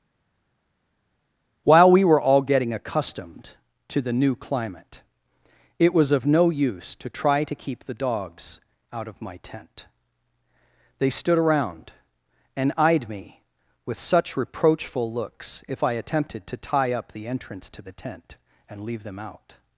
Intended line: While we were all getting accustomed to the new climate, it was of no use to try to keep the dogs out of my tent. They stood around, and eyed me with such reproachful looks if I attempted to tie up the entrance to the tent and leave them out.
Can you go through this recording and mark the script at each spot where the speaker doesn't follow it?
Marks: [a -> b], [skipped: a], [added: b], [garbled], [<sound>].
While we were all getting accustomed to the new climate, it was of no use to try to keep the dogs out of my tent. They stood around, and eyed me with such reproachful looks if I attempted to tie up the entrance to the tent and leave them out.